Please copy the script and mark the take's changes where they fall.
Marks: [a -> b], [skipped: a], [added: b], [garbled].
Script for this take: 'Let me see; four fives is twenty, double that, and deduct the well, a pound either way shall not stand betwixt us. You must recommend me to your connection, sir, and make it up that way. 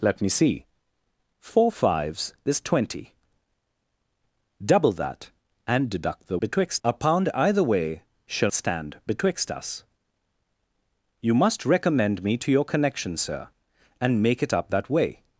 'Let me see; four fives is twenty, double that, and deduct the [well, -> betwixt] a pound either way shall [skipped: not] stand betwixt us. You must recommend me to your connection, sir, and make it up that way.